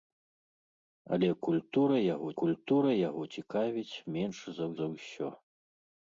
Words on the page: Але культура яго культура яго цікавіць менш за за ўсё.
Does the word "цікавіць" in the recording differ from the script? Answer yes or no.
no